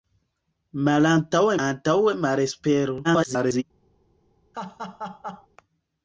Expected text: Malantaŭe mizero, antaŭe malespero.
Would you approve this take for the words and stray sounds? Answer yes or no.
no